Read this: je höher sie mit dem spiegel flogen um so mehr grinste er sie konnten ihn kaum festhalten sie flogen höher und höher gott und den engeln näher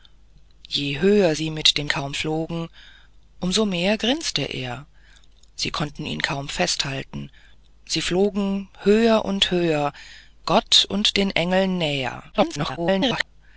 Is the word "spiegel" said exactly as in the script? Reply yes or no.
no